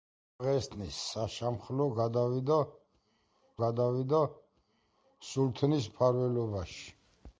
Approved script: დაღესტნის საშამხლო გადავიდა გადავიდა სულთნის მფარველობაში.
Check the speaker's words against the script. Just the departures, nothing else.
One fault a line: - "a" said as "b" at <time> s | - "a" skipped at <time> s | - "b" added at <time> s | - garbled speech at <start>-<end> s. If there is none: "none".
none